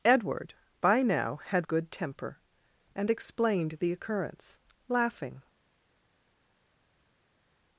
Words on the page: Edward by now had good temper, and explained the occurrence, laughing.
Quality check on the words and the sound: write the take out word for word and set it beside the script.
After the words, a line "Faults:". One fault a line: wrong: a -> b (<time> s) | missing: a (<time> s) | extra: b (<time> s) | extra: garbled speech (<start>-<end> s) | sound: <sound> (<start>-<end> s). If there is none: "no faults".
Edward by now had good temper, and explained the occurrence, laughing.
Faults:
no faults